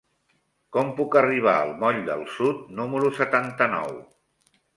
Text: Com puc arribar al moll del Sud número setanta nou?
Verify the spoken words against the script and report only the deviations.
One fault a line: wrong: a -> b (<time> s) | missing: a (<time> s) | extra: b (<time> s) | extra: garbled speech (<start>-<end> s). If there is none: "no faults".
no faults